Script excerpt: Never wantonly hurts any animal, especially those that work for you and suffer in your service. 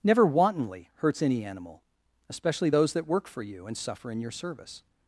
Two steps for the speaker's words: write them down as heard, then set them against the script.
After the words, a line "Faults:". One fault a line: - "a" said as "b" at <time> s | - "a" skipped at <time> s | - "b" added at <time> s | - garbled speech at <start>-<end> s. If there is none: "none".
Never wantonly hurts any animal, especially those that work for you and suffer in your service.
Faults:
none